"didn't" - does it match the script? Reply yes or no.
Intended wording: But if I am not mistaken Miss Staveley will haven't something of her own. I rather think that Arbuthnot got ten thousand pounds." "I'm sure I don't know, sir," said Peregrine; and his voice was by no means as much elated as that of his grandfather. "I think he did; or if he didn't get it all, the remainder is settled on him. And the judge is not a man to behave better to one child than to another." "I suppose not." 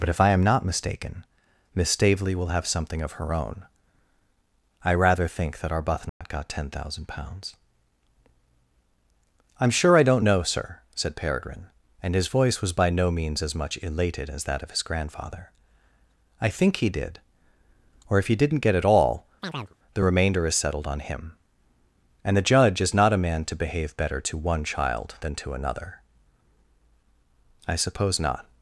yes